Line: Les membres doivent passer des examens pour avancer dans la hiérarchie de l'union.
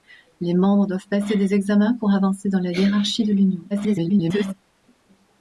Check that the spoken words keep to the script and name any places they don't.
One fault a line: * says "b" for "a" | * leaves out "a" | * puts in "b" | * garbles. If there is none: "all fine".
* garbles